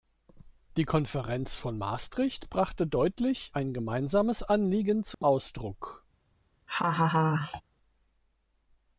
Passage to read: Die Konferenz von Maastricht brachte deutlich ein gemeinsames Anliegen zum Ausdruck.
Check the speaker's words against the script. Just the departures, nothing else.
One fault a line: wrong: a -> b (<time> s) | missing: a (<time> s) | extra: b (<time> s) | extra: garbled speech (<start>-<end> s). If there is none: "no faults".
no faults